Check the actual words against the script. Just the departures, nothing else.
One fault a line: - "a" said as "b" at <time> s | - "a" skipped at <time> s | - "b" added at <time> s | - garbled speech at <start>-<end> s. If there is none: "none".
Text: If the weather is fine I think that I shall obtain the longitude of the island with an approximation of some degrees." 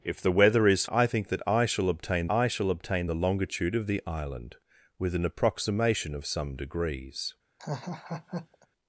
- "fine" skipped at 0.8 s
- "I shall obtain" added at 2.3 s